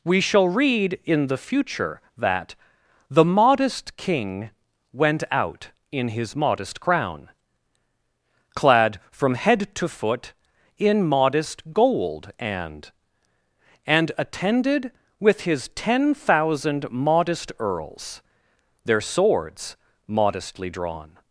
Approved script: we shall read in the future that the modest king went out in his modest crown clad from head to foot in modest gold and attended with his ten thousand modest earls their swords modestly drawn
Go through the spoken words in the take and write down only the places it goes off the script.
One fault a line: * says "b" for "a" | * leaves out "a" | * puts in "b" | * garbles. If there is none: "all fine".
* puts in "and"